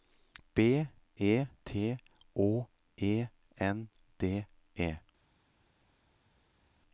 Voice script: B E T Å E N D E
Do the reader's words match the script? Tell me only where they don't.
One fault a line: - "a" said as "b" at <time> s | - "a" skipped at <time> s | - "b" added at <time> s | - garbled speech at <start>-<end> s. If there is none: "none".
none